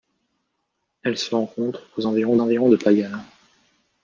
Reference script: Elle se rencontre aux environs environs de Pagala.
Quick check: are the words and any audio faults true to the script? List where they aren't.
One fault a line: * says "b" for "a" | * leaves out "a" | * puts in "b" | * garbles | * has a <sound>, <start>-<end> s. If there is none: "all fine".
all fine